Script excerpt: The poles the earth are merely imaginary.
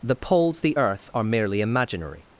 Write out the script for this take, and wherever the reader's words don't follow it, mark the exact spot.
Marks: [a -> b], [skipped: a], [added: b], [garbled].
The poles the earth are merely imaginary.